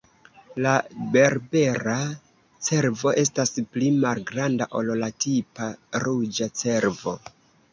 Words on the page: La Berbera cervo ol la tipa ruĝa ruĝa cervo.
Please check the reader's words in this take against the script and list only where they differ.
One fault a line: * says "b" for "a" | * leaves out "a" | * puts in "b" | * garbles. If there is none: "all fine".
* puts in "estas pli malgranda"
* leaves out "ruĝa"